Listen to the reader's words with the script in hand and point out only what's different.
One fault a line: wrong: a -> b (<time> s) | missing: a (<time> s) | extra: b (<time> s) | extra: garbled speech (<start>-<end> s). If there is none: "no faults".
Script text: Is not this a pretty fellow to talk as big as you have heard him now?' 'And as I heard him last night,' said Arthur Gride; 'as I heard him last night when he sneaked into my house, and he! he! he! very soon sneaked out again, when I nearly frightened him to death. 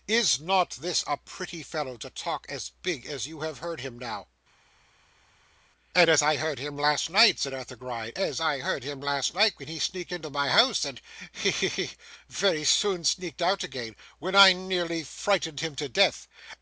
no faults